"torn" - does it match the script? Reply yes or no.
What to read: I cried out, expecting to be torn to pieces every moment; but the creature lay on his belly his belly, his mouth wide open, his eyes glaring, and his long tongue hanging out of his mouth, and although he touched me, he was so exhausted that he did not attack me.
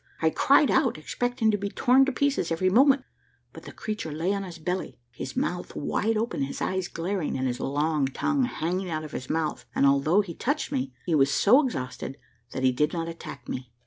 yes